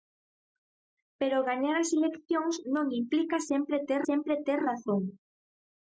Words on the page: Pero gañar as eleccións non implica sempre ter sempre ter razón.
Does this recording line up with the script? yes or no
yes